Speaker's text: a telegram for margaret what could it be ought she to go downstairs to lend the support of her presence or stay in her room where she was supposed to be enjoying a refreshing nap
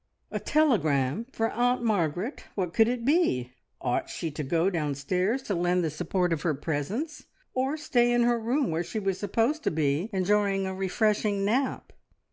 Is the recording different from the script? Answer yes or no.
yes